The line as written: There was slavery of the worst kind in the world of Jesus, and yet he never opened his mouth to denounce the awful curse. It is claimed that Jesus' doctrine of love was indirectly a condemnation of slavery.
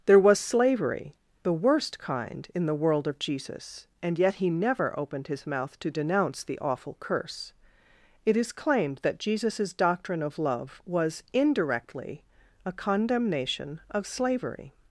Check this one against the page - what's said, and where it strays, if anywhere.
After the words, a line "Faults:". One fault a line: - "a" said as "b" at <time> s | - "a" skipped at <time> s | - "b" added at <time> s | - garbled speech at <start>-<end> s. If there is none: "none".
There was slavery the worst kind in the world of Jesus, and yet he never opened his mouth to denounce the awful curse. It is claimed that Jesus' doctrine of love was indirectly a condemnation of slavery.
Faults:
- "of" skipped at 1.1 s